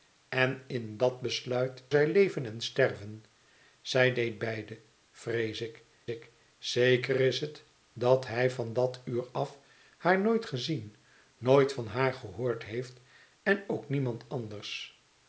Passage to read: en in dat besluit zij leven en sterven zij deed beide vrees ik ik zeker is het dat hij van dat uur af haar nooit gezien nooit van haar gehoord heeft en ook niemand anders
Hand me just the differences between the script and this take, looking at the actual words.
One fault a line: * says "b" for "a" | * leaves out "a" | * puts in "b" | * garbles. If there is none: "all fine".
all fine